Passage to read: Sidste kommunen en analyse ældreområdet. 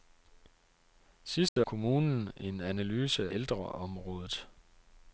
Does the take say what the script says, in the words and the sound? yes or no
no